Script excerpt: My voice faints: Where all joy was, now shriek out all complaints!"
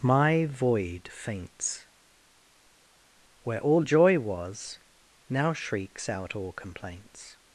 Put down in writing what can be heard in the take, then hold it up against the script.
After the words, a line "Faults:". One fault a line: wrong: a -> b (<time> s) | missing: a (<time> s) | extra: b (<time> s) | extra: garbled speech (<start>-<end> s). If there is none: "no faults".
My void faints: Where all joy was, now shrieks out all complaints!"
Faults:
wrong: voice -> void (0.5 s)
wrong: shriek -> shrieks (5.5 s)